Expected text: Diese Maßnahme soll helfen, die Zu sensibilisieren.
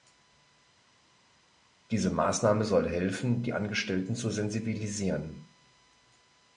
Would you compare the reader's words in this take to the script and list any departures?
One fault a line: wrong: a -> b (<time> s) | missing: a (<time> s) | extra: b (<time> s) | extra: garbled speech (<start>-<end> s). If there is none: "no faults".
extra: Angestellten (3.5 s)